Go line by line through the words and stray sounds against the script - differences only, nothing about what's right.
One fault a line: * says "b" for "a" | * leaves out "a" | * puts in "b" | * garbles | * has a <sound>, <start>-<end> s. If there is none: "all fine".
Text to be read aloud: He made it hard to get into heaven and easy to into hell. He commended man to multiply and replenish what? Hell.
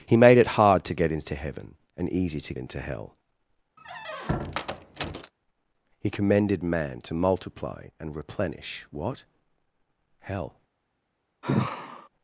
* has a squeak, 3.8-5.3 s
* has a sigh, 11.4-12.1 s